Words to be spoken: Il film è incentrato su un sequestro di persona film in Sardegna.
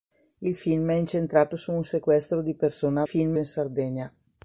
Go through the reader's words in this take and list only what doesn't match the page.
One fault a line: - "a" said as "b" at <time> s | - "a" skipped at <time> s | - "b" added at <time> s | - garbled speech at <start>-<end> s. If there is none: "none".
none